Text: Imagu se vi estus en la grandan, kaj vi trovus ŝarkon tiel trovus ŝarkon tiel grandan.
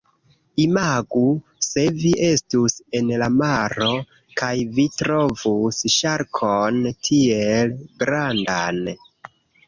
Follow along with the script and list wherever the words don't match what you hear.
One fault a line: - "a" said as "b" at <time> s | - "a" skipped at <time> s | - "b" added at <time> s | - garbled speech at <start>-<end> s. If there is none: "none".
- "grandan" said as "maro" at 3.4 s
- "trovus ŝarkon tiel" skipped at 7.8 s